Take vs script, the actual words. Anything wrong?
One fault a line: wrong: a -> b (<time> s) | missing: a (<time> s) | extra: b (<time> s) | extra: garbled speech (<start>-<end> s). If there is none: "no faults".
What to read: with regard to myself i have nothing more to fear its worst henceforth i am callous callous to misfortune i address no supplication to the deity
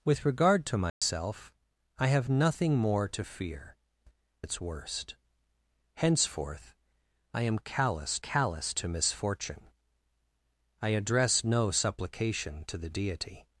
no faults